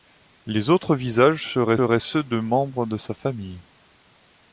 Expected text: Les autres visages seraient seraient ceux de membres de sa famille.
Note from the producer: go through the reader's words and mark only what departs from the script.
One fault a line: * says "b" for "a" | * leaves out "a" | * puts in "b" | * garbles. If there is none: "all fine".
all fine